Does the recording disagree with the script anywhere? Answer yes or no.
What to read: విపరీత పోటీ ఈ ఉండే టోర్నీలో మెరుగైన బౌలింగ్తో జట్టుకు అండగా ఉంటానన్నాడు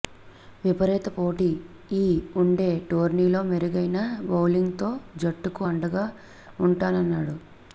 no